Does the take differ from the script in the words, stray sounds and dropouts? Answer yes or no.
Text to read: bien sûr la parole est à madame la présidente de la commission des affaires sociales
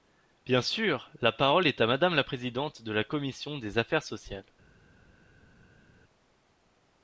no